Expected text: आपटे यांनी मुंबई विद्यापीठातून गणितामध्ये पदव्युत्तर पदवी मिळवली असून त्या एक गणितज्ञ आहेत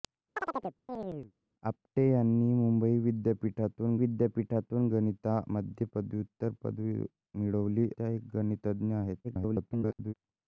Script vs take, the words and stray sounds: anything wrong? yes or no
yes